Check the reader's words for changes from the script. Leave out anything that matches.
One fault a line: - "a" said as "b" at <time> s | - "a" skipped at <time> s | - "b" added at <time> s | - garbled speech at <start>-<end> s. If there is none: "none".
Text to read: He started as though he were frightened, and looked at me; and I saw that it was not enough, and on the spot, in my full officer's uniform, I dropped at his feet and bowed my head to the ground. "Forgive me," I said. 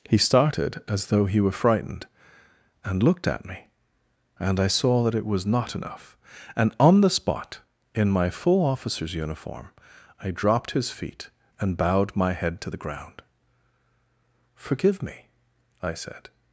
- "at" skipped at 10.7 s